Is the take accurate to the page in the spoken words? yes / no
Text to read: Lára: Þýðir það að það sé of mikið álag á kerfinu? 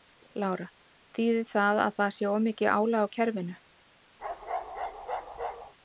yes